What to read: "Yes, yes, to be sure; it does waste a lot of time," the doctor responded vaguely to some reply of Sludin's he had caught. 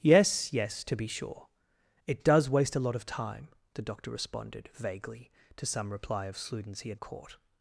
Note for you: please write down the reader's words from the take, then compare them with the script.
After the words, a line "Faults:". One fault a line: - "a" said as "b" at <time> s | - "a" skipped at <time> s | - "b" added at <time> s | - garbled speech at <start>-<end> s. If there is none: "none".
"Yes, yes, to be sure; it does waste a lot of time," the doctor responded vaguely to some reply of Sludin's he had caught.
Faults:
none